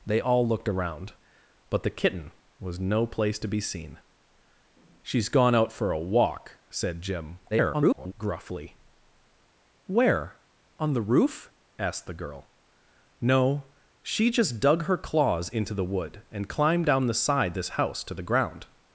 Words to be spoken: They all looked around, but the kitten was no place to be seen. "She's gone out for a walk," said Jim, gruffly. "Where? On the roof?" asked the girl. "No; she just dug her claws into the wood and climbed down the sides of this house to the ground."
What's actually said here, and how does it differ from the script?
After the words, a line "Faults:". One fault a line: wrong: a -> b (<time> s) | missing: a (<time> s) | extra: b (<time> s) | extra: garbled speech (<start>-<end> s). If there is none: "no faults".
They all looked around, but the kitten was no place to be seen. "She's gone out for a walk," said Jim, [garbled] gruffly. "Where? On the roof?" asked the girl. "No; she just dug her claws into the wood and climbed down the sides this house to the ground."
Faults:
extra: garbled speech (7.5-8.1 s)
missing: of (17.6 s)